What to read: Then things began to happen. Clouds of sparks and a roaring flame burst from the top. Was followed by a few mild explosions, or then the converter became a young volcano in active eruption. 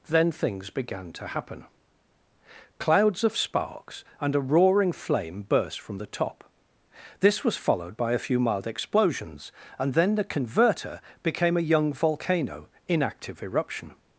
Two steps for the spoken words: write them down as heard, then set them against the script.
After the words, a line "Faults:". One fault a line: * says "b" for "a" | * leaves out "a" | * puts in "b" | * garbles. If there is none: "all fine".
Then things began to happen. Clouds of sparks and a roaring flame burst from the top. This was followed by a few mild explosions, and then the converter became a young volcano in active eruption.
Faults:
* puts in "This"
* says "and" for "or"